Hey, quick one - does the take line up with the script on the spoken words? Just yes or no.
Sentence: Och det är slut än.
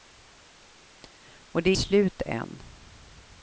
yes